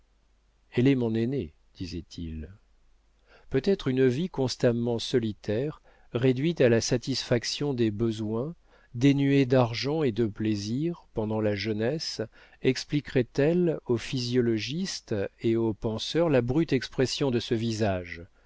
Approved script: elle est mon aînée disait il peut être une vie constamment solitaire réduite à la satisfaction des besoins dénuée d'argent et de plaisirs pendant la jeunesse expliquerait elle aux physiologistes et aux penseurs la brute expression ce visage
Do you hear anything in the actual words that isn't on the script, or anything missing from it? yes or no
yes